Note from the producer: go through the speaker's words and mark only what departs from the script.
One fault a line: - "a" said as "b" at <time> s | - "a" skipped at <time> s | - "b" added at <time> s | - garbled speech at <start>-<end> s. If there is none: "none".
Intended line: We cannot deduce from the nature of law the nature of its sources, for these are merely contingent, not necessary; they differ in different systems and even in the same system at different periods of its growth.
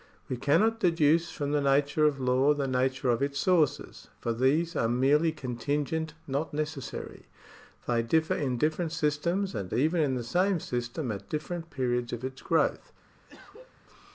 none